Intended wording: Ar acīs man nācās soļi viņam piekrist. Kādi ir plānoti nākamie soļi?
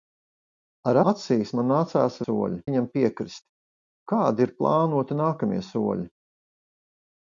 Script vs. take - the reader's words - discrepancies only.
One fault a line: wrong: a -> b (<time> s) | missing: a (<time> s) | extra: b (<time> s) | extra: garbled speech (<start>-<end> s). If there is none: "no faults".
no faults